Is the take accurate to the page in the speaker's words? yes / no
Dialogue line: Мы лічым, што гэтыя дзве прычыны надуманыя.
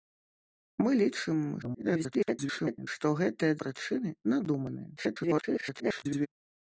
no